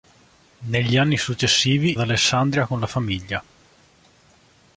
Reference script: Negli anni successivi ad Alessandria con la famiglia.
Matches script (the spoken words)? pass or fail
pass